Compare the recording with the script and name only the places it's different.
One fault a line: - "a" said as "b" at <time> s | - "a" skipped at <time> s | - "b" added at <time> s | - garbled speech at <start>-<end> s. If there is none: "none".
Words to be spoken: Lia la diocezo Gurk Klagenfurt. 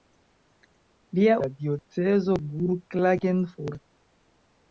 none